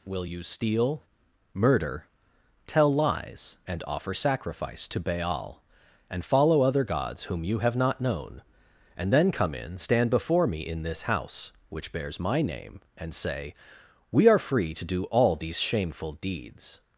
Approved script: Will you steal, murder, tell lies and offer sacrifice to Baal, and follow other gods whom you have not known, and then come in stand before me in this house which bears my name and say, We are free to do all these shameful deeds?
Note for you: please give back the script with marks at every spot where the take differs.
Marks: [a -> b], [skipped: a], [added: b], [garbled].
Will you steal, murder, tell lies and offer sacrifice to Baal, and follow other gods whom you have not known, and then come in stand before me in this house which bears my name and say, We are free to do all these shameful deeds?